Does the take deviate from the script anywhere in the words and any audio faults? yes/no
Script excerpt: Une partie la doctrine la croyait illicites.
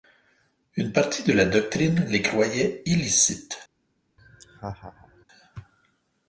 yes